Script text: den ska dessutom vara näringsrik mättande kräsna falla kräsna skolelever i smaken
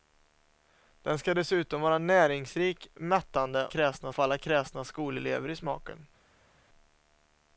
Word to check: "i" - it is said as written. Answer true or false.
true